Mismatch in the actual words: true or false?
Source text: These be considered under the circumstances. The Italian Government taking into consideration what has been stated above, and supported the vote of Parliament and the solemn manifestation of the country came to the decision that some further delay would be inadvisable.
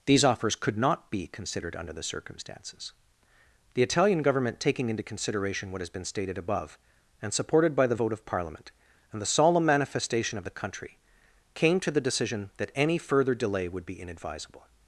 true